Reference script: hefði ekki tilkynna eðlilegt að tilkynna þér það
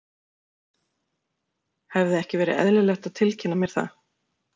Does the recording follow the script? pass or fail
fail